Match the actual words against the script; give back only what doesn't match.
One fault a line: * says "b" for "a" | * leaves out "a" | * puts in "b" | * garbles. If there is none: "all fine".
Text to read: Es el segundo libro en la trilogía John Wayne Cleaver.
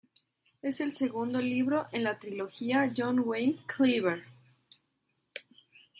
all fine